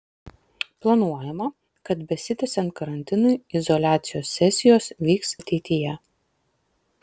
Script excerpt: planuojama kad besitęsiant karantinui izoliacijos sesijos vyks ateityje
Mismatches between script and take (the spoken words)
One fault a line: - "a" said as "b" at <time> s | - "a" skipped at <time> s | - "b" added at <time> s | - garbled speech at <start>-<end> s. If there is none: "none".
none